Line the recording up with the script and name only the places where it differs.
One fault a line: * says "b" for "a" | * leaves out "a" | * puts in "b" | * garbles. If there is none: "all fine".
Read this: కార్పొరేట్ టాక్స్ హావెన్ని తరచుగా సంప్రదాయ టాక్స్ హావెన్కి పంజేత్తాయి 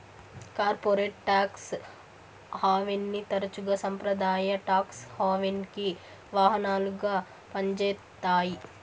* puts in "వాహనాలుగా"